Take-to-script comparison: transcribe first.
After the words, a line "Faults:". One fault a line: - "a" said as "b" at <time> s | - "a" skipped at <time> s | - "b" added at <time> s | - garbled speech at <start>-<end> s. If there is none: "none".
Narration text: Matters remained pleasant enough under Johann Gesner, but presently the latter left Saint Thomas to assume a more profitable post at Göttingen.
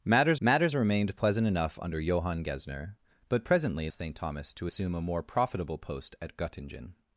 Matters matters remained pleasant enough under Johann Gesner, but presently Saint Thomas to assume a more profitable post at Göttingen.
Faults:
- "matters" added at 0.4 s
- "the latter left" skipped at 3.9 s